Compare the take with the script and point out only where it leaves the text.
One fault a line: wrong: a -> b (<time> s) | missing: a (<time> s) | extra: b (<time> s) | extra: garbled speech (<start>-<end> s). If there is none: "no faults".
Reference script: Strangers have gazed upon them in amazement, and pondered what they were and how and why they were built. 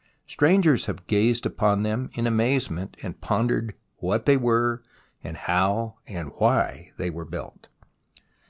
no faults